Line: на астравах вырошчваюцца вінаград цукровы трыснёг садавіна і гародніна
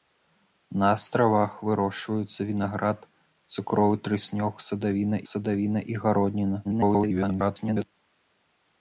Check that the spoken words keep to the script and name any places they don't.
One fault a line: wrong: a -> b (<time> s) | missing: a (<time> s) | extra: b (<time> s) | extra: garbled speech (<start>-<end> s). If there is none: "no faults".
extra: садавіна (5.3 s)
extra: garbled speech (6.6-7.8 s)